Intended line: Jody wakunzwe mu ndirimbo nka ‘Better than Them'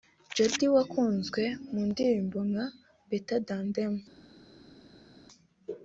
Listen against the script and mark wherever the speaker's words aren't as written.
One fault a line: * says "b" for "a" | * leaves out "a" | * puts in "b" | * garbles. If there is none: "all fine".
all fine